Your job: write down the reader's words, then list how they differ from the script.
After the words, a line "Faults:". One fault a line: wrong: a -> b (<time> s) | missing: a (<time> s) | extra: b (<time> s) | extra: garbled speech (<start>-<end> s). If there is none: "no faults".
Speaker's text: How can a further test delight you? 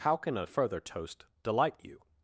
How can a further toast delight you?
Faults:
wrong: test -> toast (0.8 s)